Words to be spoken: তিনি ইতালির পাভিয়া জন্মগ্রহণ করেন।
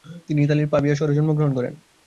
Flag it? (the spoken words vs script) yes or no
yes